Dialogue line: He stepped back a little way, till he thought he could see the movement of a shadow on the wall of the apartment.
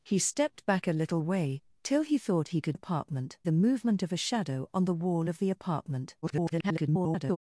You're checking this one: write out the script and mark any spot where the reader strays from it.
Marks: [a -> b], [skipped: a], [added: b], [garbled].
He stepped back a little way, till he thought he could [see -> apartment] the movement of a shadow on the wall of the apartment. [garbled]